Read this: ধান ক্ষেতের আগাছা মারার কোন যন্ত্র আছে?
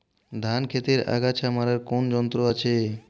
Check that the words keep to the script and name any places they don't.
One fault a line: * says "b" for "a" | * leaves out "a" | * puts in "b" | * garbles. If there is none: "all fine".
all fine